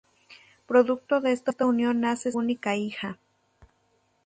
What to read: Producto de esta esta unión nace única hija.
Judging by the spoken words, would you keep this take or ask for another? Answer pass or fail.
pass